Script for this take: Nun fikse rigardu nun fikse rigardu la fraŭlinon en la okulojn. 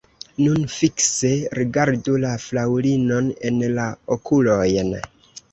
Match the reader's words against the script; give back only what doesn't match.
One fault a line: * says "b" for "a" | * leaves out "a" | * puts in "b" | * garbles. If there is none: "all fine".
* leaves out "nun fikse rigardu"